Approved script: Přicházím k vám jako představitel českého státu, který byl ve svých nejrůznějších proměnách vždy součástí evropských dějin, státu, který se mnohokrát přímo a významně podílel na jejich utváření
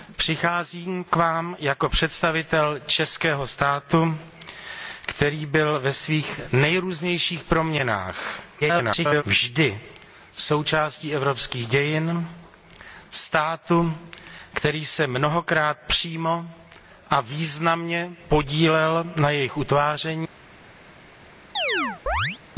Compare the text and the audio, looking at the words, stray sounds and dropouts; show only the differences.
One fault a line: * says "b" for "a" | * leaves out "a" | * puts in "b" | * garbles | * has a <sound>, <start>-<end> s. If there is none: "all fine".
* garbles
* has a chirp, 21.6-22.4 s